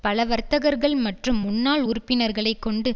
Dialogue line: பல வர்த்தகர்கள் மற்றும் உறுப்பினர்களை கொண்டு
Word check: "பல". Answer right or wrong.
right